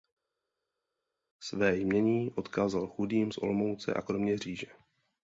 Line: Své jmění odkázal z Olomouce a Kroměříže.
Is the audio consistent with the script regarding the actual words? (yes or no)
no